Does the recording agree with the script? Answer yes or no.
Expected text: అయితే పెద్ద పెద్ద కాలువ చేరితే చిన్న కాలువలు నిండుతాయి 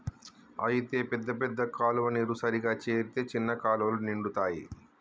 no